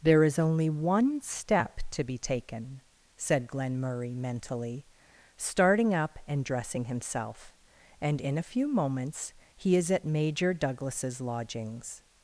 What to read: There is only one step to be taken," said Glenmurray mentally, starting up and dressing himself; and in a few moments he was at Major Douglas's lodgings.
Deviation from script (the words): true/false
true